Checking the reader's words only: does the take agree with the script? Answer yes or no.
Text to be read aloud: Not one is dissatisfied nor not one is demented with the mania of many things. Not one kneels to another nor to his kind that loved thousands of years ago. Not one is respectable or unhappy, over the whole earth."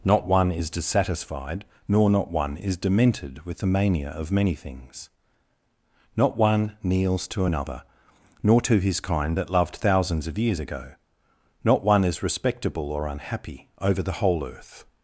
yes